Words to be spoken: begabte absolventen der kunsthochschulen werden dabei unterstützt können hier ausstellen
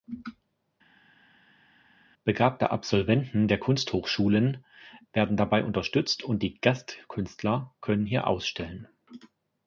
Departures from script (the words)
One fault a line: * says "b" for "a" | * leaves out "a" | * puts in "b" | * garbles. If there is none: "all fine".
* puts in "und die gastkünstler"